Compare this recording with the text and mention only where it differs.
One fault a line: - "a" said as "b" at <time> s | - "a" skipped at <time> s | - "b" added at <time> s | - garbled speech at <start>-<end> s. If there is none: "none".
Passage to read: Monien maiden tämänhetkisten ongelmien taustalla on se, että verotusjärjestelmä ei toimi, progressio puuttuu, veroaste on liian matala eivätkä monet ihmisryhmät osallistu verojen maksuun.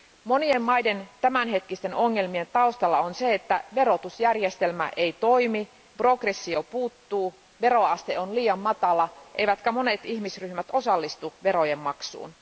none